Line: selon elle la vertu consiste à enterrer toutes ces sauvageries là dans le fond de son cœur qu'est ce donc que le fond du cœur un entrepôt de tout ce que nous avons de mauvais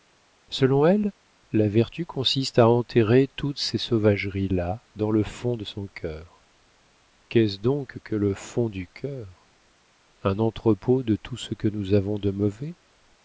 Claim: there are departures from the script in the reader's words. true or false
false